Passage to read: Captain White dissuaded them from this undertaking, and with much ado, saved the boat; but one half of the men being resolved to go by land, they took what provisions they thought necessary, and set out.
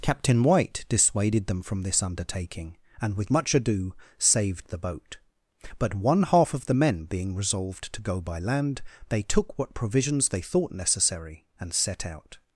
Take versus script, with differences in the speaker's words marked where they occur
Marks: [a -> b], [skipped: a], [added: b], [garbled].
Captain White dissuaded them from this undertaking, and with much ado, saved the boat; but one half of the men being resolved to go by land, they took what provisions they thought necessary, and set out.